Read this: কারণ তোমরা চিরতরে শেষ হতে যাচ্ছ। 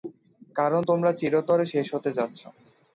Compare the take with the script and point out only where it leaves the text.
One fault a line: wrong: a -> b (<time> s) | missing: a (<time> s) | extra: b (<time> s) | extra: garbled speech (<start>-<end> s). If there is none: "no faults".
no faults